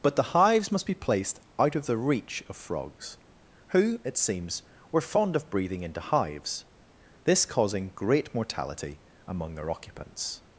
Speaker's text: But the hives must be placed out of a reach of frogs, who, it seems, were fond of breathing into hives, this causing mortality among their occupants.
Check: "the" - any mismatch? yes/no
no